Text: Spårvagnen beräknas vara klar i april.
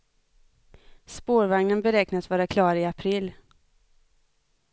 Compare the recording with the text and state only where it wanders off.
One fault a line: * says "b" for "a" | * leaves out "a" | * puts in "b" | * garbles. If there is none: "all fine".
all fine